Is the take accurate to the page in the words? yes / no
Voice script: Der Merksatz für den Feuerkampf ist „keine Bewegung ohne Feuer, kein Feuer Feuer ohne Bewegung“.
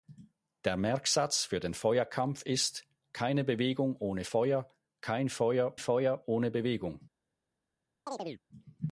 yes